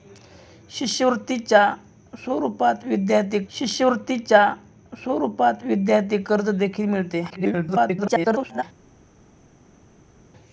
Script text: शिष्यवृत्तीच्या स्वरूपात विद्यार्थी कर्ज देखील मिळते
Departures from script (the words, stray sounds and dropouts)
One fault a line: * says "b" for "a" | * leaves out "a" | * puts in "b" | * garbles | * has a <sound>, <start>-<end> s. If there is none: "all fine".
* puts in "शिष्यवृत्तीच्या स्वरूपात विद्यार्थी"
* garbles